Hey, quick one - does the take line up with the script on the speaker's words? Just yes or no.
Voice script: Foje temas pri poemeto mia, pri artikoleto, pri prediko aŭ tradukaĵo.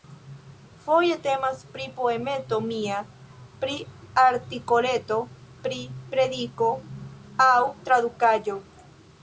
yes